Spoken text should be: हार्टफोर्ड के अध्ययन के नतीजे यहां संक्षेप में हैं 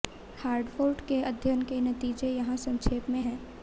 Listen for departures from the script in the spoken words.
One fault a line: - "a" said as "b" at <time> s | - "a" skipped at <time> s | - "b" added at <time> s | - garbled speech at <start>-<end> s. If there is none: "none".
none